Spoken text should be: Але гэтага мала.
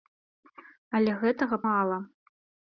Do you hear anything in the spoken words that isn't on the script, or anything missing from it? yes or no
no